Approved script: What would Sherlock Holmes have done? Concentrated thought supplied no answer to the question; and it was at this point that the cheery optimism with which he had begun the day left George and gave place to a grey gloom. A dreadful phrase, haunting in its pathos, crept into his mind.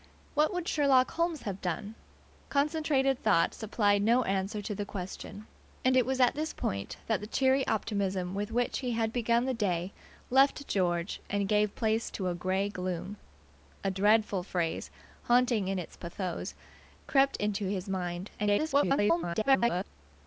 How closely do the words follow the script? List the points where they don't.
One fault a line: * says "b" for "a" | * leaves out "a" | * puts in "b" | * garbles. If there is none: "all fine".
* garbles